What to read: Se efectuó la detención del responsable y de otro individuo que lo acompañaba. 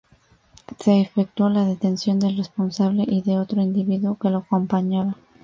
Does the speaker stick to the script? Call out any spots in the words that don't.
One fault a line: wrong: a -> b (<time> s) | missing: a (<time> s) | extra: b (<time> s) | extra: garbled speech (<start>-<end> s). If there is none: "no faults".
no faults